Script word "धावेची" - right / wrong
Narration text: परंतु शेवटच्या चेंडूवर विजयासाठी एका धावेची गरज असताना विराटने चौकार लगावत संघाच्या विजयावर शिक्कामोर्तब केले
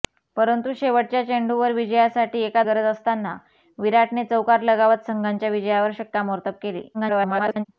wrong